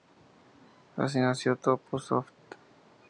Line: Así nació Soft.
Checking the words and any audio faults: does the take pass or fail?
fail